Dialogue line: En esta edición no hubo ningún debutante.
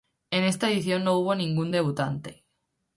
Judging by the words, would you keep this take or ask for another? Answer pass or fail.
pass